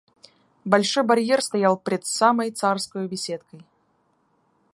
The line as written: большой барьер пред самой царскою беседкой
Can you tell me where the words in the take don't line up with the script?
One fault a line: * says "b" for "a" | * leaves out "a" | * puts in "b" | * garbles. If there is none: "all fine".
* puts in "стоял"